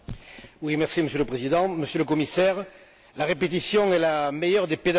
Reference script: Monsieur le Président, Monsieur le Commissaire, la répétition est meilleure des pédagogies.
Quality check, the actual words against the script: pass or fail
fail